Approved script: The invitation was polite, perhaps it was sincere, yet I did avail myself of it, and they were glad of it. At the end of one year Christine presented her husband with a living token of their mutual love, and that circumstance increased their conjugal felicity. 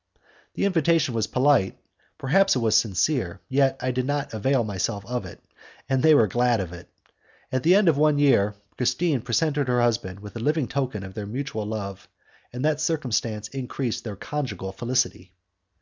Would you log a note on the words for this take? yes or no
yes